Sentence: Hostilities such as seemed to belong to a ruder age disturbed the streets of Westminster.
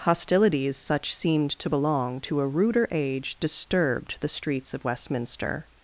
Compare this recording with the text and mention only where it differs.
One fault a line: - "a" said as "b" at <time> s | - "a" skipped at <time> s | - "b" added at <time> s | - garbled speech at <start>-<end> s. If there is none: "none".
- "as" skipped at 1.1 s